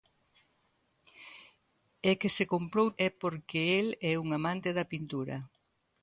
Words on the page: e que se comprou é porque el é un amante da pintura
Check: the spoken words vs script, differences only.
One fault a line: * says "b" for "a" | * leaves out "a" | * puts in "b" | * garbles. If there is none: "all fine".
all fine